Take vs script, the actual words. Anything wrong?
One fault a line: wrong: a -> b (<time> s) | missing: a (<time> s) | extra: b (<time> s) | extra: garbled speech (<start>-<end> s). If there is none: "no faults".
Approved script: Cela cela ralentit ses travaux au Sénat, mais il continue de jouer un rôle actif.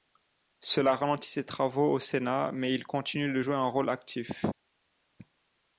missing: cela (0.9 s)